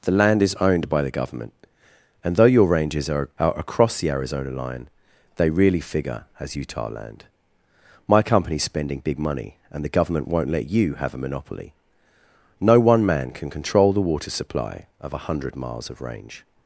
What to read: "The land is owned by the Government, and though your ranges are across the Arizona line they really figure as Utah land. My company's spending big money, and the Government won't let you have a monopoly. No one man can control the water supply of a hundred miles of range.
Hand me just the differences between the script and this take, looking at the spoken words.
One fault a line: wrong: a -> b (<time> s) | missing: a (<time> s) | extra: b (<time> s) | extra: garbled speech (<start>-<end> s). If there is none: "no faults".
extra: are (3.4 s)